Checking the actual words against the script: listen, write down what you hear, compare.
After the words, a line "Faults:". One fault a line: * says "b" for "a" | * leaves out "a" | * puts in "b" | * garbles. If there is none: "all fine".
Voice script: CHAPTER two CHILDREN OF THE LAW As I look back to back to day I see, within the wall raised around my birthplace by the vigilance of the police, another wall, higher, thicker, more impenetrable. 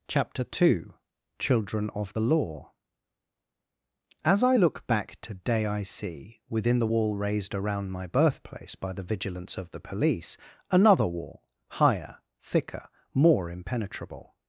CHAPTER two CHILDREN OF THE LAW As I look back to day I see, within the wall raised around my birthplace by the vigilance of the police, another wall, higher, thicker, more impenetrable.
Faults:
* leaves out "back to"